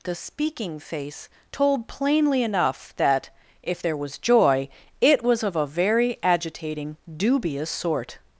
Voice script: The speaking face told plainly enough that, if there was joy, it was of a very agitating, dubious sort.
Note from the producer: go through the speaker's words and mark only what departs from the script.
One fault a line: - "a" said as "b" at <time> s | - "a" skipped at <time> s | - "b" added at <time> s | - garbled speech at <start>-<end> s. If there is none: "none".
none